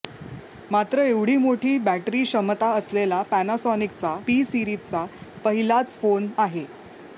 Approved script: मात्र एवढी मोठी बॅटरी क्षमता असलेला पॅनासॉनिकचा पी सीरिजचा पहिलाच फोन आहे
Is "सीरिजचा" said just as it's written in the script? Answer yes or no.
yes